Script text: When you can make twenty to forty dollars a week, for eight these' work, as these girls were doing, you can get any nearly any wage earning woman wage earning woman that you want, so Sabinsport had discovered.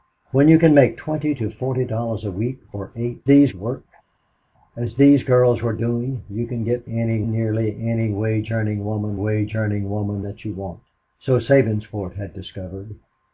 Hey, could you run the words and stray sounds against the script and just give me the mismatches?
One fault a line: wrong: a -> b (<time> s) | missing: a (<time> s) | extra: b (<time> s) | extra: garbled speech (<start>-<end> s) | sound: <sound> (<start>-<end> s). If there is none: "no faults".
no faults